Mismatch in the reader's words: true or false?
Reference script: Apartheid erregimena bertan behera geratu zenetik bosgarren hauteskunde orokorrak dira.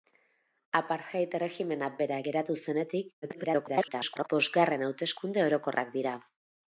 true